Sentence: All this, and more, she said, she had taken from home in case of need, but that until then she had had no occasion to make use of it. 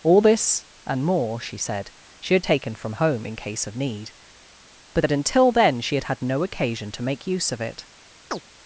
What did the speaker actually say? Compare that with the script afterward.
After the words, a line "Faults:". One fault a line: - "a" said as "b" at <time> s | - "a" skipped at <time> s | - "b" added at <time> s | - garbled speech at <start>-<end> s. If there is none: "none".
All this, and more, she said, she had taken from home in case of need, but that until then she had had no occasion to make use of it.
Faults:
none